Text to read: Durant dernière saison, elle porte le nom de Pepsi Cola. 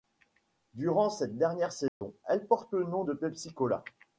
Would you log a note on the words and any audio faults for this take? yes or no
yes